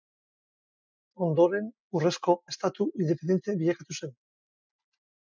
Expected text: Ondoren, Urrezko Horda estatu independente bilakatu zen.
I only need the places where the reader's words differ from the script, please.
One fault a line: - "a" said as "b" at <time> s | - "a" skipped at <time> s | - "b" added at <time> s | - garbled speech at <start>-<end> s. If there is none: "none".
- "Horda" skipped at 2.4 s